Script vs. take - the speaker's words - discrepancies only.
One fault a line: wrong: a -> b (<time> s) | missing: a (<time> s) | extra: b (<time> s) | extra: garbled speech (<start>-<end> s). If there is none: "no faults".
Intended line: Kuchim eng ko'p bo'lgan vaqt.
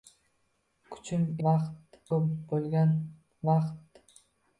wrong: eng -> vaqt (1.5 s)